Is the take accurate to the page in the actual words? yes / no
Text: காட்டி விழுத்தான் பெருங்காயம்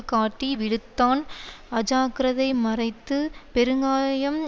no